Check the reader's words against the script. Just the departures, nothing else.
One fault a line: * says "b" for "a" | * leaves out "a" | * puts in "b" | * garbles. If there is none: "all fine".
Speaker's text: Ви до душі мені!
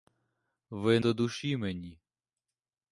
all fine